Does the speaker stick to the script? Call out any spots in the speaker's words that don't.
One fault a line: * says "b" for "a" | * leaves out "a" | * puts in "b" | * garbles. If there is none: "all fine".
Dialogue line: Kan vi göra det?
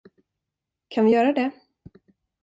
all fine